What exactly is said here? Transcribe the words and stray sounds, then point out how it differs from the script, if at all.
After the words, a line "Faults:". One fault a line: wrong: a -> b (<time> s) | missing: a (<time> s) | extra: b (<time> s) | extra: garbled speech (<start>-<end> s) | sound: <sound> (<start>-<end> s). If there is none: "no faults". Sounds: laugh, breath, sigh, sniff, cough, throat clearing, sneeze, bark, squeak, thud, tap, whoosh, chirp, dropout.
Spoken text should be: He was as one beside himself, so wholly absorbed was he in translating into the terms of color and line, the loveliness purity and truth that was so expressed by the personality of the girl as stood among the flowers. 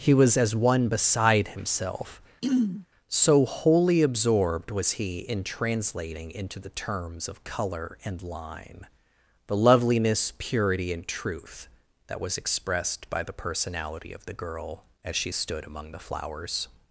He was as one beside himself, so wholly absorbed was he in translating into the terms of color and line, the loveliness purity and truth that was expressed by the personality of the girl as she stood among the flowers.
Faults:
sound: throat clearing (2.4-2.9 s)
missing: so (12.4 s)
extra: she (15.1 s)